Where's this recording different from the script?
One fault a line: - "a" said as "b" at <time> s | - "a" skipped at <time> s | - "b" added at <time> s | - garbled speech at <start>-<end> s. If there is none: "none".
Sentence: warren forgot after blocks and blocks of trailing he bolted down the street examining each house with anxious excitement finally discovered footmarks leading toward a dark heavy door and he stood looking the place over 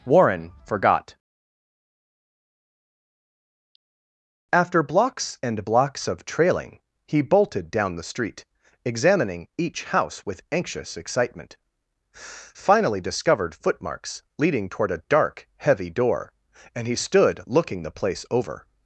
none